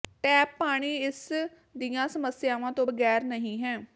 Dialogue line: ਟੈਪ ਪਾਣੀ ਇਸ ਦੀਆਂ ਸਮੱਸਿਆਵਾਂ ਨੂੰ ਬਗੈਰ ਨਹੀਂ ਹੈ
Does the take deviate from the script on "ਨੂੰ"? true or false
true